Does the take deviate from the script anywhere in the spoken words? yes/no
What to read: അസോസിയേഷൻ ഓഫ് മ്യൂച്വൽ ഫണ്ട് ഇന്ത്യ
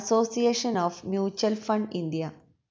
no